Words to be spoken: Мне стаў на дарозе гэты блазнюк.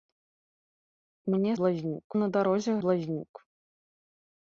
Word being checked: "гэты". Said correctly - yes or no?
no